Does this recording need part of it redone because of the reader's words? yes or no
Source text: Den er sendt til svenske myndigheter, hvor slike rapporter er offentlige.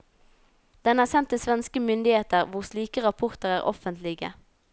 no